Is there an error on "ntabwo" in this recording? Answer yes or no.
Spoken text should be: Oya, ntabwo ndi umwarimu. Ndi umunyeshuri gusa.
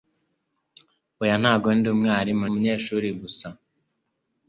no